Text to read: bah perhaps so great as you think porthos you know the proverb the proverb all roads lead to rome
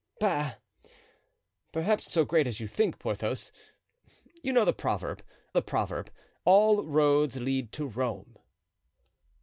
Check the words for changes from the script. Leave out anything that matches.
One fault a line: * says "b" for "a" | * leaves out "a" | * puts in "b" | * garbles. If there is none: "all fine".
all fine